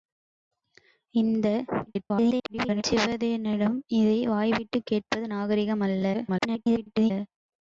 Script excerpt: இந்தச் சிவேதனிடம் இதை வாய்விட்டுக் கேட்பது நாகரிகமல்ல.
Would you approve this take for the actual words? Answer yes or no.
no